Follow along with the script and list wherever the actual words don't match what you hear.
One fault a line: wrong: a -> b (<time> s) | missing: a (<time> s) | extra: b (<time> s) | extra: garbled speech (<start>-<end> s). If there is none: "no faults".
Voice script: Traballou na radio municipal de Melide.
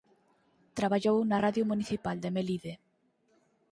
no faults